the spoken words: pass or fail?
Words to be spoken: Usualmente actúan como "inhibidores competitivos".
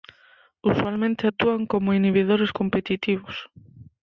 pass